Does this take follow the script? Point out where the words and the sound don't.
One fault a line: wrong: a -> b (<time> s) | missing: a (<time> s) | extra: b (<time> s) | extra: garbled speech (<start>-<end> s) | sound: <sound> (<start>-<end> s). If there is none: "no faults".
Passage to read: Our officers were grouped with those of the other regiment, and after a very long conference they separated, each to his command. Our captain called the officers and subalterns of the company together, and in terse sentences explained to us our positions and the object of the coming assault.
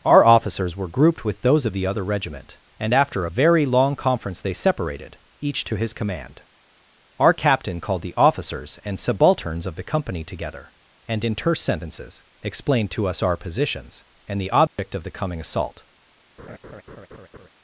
sound: dropout (14.7-14.8 s)
sound: laugh (16.4-17.5 s)